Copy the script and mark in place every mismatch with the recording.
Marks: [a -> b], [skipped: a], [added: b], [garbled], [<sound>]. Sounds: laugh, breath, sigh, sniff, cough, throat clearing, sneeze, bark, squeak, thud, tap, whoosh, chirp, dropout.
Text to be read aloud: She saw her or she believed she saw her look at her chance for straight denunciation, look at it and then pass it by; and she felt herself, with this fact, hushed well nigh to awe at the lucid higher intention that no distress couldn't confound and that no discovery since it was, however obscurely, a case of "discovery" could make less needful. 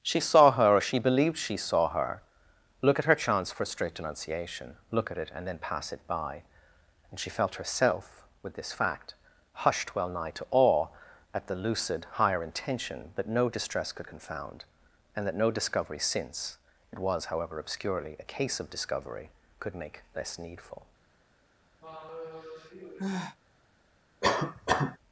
She saw her or she believed she saw her look at her chance for straight denunciation, look at it and then pass it by; and she felt herself, with this fact, hushed well nigh to awe at the lucid higher intention that no distress [couldn't -> could] confound and that no discovery since it was, however obscurely, a case of "discovery" could make less needful. [sigh] [cough]